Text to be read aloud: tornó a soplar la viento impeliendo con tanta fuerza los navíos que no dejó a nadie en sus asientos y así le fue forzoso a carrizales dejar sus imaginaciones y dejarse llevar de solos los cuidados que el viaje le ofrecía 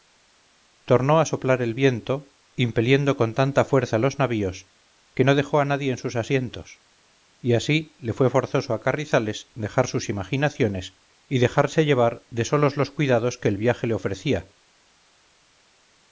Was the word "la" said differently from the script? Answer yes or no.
yes